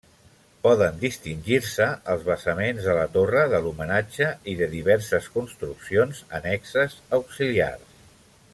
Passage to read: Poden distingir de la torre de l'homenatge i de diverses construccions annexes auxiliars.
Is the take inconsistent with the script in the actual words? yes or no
yes